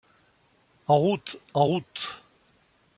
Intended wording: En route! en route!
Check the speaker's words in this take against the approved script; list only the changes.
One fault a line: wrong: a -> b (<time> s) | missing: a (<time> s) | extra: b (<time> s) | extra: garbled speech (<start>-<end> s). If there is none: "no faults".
no faults